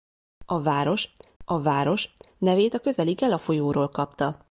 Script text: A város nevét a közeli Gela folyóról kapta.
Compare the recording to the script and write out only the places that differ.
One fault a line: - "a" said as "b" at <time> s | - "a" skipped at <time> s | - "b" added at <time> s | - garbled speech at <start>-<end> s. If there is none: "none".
- "a város" added at 1.4 s